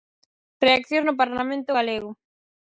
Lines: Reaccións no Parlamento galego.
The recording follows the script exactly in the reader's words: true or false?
true